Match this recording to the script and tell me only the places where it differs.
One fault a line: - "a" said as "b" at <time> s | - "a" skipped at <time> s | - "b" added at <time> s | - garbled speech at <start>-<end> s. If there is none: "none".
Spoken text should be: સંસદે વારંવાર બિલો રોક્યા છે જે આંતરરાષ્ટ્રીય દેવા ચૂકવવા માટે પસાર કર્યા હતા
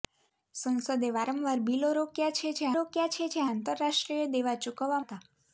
- "રોક્યા છે જે" added at 2.7 s
- "માટે પસાર કર્યા" skipped at 5.0 s